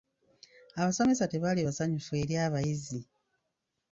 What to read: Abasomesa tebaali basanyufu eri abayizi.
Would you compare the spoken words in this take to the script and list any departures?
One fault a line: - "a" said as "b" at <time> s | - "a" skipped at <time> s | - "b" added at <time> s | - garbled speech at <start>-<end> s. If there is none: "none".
none